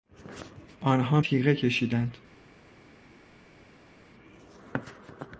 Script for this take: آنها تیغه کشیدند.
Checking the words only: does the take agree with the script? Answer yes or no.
yes